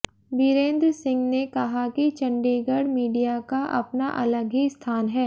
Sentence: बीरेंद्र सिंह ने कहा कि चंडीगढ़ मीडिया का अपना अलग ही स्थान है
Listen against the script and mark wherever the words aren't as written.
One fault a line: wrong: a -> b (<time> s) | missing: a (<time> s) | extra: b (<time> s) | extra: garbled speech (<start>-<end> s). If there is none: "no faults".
no faults